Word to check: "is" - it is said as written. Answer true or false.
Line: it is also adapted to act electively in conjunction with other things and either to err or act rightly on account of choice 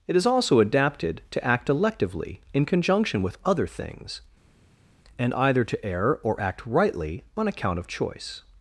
true